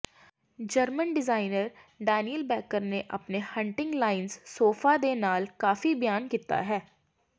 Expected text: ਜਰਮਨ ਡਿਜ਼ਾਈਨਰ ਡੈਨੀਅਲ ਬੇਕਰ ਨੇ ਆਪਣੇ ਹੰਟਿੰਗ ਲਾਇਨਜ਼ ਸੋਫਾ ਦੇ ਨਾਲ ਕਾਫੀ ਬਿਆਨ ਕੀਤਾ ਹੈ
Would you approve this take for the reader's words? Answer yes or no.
yes